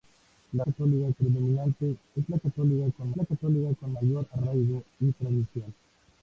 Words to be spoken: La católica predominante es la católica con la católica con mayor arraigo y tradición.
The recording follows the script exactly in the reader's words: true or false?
true